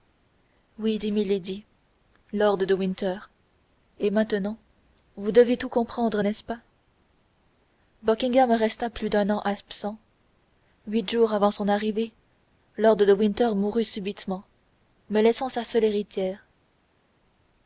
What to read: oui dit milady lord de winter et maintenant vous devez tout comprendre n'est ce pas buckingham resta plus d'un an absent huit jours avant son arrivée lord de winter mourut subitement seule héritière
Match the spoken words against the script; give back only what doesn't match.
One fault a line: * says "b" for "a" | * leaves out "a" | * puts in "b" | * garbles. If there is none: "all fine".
* puts in "me laissant sa"